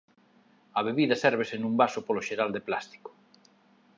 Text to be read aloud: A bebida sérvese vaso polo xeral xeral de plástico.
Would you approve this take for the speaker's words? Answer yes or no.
no